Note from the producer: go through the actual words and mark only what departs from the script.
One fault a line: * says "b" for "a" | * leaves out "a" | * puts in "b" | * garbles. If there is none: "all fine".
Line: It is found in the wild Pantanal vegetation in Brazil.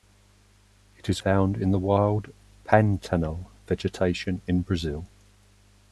all fine